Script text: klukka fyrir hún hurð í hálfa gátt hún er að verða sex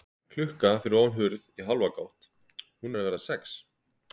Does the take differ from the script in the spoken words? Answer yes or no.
yes